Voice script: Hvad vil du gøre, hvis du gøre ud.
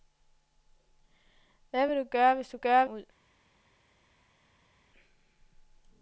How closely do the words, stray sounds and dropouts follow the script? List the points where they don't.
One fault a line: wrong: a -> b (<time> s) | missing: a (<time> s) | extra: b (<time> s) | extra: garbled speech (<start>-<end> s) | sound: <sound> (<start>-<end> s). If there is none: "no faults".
no faults